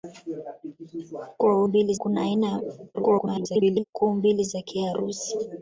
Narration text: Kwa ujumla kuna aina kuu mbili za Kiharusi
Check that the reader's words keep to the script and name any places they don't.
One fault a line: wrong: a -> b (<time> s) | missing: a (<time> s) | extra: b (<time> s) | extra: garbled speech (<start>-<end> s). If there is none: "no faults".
wrong: ujumla -> mbili (1.6 s)
extra: garbled speech (2.9-3.8 s)